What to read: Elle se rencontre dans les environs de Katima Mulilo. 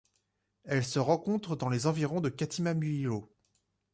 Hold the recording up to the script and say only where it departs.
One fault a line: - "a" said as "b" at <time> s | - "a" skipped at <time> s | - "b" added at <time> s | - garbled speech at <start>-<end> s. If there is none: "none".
none